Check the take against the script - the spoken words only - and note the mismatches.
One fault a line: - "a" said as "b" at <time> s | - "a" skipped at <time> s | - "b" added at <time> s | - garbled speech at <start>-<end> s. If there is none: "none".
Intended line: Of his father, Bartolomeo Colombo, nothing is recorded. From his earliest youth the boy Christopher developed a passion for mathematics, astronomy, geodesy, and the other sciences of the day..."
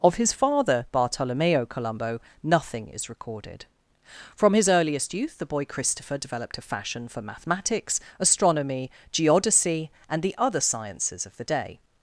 - "passion" said as "fashion" at 6.6 s